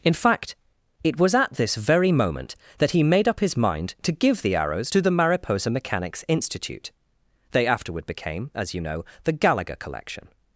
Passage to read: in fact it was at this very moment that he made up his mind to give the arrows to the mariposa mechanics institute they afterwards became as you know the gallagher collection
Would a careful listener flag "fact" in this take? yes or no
no